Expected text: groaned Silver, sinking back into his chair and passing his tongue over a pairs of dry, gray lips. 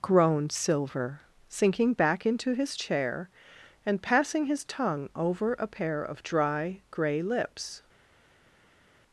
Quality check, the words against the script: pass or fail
fail